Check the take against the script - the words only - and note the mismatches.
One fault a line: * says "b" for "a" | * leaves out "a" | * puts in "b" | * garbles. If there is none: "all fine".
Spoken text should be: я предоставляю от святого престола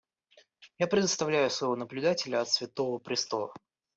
* puts in "слово наблюдателю"